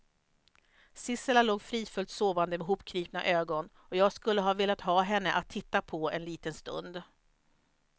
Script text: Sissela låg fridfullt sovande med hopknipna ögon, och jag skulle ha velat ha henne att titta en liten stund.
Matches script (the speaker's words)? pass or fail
fail